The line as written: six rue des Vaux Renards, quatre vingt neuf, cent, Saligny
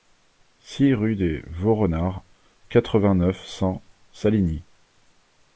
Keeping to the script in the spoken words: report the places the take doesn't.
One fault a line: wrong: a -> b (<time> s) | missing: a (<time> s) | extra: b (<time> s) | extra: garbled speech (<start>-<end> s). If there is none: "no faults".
no faults